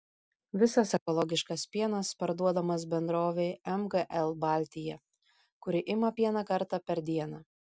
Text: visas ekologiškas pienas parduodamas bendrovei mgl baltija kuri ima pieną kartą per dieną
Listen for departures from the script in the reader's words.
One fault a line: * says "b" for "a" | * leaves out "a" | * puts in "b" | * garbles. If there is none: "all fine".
all fine